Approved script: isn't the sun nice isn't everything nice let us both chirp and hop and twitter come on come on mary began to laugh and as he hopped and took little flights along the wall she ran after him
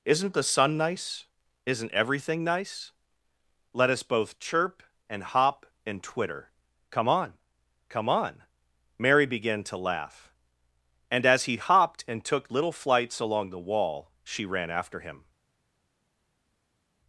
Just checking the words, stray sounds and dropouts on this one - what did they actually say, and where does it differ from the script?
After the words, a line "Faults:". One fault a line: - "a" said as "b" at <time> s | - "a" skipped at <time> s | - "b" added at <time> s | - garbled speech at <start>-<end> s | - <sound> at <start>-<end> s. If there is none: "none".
isn't the sun nice isn't everything nice let us both chirp and hop and twitter come on come on mary began to laugh and as he hopped and took little flights along the wall she ran after him
Faults:
none